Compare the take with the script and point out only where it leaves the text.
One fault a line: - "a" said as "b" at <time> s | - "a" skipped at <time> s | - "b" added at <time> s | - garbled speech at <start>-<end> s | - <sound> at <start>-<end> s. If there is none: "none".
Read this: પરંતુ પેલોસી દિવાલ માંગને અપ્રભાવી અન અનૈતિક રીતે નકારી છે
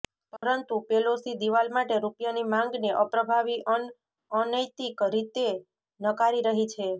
- dropout at 0.4-0.4 s
- "માટે રૂપિયાની" added at 1.8 s
- "રહી" added at 6.5 s